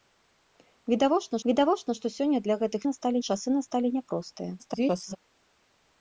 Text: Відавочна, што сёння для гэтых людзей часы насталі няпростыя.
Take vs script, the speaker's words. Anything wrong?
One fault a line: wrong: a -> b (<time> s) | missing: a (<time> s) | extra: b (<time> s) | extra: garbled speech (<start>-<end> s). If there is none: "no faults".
extra: відавочна (1.5 s)
wrong: людзей -> насталі (2.9 s)
extra: garbled speech (4.6-5.2 s)